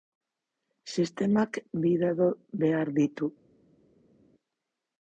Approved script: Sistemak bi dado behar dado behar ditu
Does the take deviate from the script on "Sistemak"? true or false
false